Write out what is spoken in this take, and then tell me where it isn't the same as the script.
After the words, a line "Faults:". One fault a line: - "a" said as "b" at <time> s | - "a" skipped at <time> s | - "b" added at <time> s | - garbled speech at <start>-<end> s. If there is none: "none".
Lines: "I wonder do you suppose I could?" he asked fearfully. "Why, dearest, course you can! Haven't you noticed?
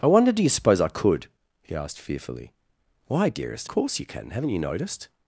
"I wonder do you suppose I could?" he asked fearfully. "Why, dearest, course you can! Haven't you noticed?
Faults:
none